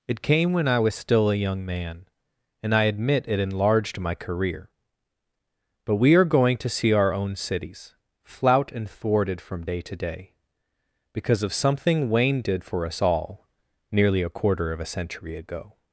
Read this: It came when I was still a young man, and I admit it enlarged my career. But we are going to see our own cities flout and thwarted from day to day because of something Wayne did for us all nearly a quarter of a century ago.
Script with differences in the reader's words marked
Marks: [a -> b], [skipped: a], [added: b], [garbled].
It came when I was still a young man, and I admit it enlarged my career. But we are going to see our own cities flout and thwarted from day to day because of something Wayne did for us all nearly a quarter of a century ago.